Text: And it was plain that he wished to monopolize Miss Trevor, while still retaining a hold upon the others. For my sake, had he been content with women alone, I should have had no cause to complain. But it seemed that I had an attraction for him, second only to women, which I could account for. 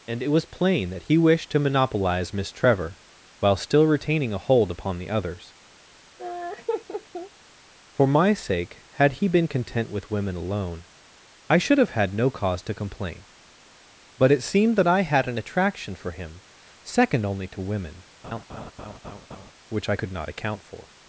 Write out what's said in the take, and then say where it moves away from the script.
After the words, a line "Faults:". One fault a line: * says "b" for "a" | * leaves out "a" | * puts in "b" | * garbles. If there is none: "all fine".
And it was plain that he wished to monopolize Miss Trevor, while still retaining a hold upon the others. For my sake, had he been content with women alone, I should have had no cause to complain. But it seemed that I had an attraction for him, second only to women, which I could not account for.
Faults:
* puts in "not"